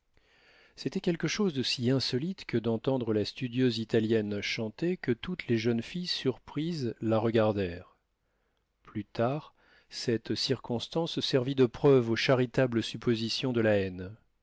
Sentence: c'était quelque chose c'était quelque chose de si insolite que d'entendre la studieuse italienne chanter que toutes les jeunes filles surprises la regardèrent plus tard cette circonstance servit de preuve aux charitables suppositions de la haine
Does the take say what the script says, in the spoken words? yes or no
no